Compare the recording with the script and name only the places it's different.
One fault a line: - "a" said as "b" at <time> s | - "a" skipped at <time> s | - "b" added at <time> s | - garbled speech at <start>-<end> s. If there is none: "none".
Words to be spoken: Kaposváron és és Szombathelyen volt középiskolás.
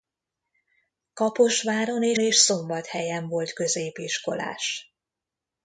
none